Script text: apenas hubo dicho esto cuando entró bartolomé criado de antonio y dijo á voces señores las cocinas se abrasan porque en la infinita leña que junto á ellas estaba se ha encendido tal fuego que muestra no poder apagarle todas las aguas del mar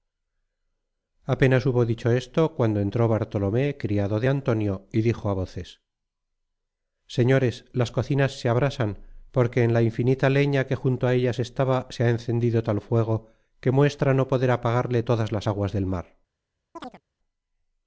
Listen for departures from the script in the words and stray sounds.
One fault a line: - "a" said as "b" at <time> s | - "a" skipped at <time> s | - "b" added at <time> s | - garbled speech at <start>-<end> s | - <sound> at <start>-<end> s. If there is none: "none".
- chirp at 16.8-17.0 s